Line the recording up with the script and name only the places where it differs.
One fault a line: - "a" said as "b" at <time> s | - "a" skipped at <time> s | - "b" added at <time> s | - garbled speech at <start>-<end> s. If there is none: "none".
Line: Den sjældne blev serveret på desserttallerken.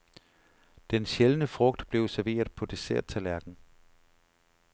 - "frugt" added at 1.5 s